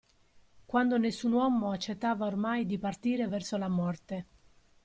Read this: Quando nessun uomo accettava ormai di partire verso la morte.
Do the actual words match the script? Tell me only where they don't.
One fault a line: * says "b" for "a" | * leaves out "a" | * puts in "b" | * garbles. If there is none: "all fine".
all fine